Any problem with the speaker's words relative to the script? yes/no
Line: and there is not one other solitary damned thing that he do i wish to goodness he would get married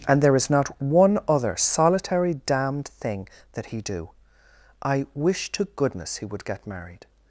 no